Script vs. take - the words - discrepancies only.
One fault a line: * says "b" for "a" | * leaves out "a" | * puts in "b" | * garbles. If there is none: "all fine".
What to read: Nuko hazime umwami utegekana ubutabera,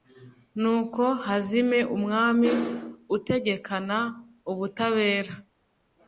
all fine